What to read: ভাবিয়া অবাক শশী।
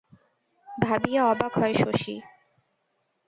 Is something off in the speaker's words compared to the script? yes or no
yes